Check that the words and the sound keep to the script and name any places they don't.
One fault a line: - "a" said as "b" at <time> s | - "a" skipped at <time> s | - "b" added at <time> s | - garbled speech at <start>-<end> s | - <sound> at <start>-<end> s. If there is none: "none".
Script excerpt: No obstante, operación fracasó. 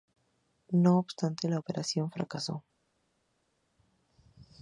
- "la" added at 1.5 s